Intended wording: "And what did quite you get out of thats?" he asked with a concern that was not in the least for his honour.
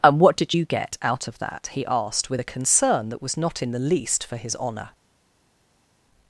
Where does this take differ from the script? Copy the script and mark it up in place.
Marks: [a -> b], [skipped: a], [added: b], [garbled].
"And what did [skipped: quite] you get out of [thats?" -> that] he asked with a concern that was not in the least for his honour.